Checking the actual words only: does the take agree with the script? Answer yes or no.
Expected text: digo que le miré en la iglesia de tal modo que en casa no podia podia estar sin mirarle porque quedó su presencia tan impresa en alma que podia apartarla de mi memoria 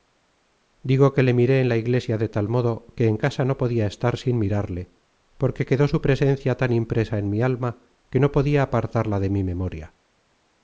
no